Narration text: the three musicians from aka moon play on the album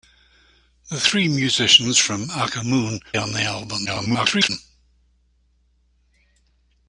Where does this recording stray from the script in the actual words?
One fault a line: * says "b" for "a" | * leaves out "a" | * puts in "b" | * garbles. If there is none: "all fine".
* leaves out "play"
* garbles